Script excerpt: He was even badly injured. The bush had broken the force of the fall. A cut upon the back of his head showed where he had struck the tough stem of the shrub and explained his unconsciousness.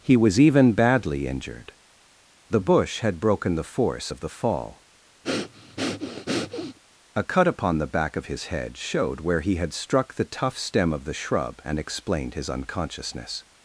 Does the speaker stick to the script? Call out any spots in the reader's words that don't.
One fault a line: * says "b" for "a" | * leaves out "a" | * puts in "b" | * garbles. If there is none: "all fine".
all fine